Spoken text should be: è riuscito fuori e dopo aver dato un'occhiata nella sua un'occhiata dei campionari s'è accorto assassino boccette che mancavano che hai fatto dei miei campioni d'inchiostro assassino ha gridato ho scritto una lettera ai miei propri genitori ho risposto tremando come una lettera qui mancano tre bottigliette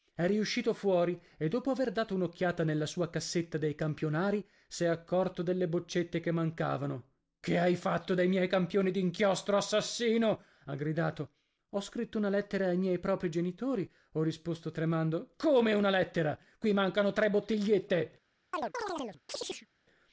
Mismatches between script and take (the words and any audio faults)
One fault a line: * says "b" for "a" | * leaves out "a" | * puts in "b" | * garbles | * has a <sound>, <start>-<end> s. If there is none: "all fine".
* says "cassetta" for "un'occhiata"
* says "delle" for "assassino"
* has a chirp, 18.5-19.7 s